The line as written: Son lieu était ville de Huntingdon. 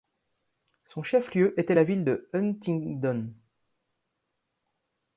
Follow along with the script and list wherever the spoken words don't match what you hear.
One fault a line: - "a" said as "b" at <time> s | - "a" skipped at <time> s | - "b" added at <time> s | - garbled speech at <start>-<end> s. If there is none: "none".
- "chef" added at 1.0 s
- "la" added at 1.7 s